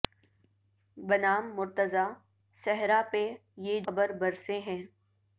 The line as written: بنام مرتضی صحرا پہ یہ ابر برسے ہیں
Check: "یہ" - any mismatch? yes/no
no